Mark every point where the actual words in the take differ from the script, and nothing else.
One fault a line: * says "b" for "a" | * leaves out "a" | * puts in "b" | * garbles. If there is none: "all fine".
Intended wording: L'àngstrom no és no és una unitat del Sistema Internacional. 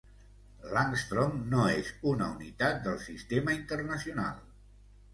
* leaves out "no és"